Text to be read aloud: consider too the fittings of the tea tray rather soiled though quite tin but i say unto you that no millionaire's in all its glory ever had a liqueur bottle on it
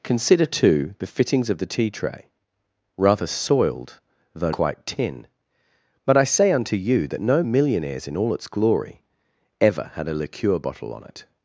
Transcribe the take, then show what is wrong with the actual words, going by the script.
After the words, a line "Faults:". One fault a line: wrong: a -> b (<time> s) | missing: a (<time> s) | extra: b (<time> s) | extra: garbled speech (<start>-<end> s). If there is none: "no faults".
consider too the fittings of the tea tray rather soiled though quite tin but i say unto you that no millionaire's in all its glory ever had a liqueur bottle on it
Faults:
no faults